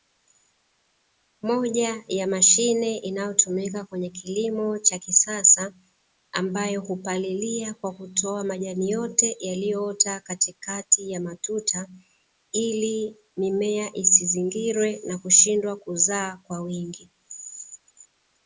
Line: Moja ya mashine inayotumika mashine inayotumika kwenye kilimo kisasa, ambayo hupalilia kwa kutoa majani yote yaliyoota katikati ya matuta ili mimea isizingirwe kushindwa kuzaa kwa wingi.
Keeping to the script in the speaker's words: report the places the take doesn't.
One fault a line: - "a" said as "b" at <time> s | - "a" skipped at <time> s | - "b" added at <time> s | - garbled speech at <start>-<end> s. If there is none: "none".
- "mashine inayotumika" skipped at 3.9 s
- "cha" added at 4.8 s
- "na" added at 15.1 s